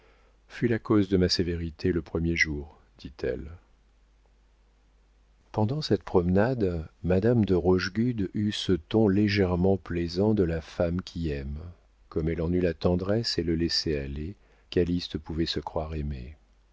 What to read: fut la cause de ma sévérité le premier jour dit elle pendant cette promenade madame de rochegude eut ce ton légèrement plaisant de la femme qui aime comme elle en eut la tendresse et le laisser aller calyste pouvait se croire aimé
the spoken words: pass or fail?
pass